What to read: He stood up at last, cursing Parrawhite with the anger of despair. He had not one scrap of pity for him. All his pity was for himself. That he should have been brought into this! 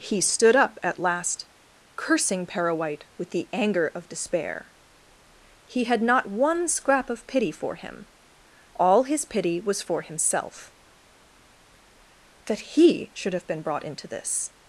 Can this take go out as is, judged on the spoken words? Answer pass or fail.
pass